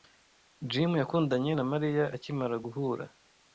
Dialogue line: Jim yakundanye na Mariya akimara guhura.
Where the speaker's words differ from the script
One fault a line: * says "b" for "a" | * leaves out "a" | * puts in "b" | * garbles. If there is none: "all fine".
all fine